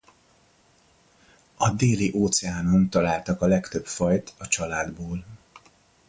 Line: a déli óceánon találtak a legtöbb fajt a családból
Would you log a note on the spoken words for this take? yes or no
no